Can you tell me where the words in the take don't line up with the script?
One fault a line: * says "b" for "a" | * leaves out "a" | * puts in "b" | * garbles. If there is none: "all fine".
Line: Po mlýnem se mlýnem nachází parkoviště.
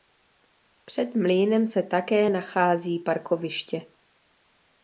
* says "Před" for "Po"
* says "také" for "mlýnem"